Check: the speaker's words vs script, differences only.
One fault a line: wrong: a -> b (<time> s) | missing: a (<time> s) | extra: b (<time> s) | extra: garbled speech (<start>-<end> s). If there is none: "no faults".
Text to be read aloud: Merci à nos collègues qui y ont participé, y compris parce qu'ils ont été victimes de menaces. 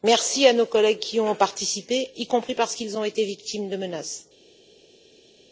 no faults